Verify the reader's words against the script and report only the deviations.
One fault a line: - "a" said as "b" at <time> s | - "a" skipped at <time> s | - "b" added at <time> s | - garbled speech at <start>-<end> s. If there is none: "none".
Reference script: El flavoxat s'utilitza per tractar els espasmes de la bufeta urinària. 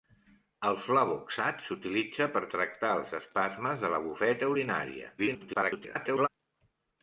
- garbled speech at 5.2-6.3 s